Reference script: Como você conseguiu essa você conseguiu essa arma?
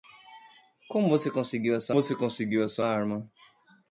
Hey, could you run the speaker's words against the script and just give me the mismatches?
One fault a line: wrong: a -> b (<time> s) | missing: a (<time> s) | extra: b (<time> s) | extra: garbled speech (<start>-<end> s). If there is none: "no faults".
no faults